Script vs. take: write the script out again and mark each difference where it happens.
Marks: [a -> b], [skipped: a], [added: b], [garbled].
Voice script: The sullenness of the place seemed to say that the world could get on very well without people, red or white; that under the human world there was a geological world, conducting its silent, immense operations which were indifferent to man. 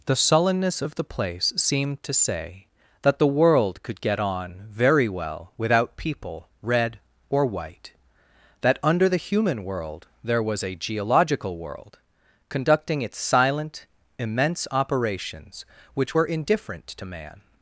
The sullenness of the place seemed to say that the world could get on very well without people, red or white; that under the human world there was a geological world, conducting its silent, immense operations which were indifferent to man.